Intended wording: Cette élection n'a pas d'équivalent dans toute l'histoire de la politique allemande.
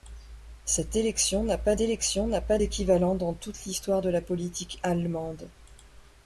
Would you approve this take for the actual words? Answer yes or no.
no